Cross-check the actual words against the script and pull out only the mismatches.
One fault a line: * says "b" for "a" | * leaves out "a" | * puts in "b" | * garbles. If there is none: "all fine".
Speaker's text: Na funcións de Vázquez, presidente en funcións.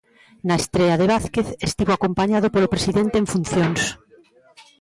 * says "estrea" for "funcións"
* puts in "estivo acompañado polo"